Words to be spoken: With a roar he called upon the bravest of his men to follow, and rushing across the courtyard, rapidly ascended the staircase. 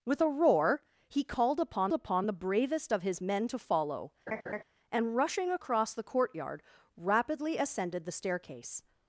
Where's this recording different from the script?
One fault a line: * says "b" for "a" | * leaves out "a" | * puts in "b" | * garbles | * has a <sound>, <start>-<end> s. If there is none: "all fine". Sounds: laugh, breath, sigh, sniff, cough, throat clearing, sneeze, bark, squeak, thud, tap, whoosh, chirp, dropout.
* puts in "upon"
* has a laugh, 4.3-4.6 s